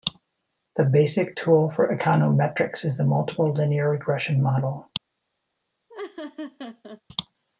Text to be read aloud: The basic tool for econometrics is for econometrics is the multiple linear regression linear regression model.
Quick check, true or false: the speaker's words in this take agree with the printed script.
false